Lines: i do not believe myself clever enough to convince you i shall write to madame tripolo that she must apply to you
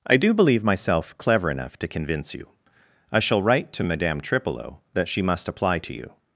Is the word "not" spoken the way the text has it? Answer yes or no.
no